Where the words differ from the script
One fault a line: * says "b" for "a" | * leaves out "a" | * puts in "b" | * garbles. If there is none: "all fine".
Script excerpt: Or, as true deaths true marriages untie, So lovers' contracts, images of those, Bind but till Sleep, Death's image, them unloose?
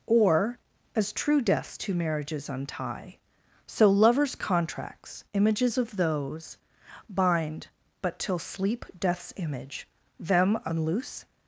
* says "two" for "true"